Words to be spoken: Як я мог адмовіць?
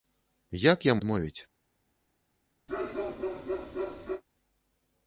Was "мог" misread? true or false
true